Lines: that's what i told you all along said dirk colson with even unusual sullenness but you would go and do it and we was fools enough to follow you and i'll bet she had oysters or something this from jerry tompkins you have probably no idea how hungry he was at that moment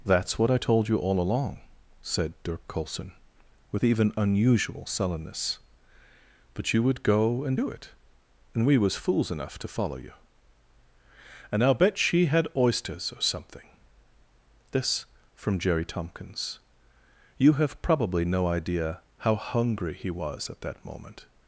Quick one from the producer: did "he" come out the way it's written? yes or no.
yes